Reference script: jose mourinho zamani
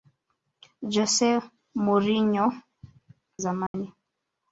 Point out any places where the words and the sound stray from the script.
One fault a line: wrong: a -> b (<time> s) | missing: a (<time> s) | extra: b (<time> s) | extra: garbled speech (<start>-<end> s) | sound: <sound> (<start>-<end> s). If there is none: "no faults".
sound: dropout (3.7-3.7 s)